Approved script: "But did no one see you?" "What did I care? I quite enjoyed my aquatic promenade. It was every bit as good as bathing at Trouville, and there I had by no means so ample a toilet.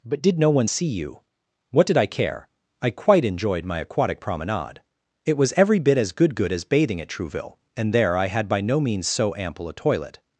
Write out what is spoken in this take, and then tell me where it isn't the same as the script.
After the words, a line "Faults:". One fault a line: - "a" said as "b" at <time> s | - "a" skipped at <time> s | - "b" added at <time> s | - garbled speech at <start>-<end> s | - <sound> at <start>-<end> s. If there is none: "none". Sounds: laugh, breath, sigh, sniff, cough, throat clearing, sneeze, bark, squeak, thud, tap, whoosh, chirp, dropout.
"But did no one see you?" "What did I care? I quite enjoyed my aquatic promenade. It was every bit as good good as bathing at Trouville, and there I had by no means so ample a toilet.
Faults:
- "good" added at 6.4 s